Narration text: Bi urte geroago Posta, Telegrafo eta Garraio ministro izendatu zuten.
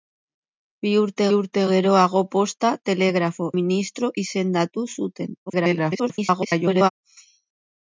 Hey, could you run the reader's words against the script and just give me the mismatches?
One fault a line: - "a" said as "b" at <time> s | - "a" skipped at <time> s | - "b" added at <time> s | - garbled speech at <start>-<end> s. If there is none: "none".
- "urte" added at 1.4 s
- "eta Garraio" skipped at 3.5 s
- garbled speech at 5.5-6.9 s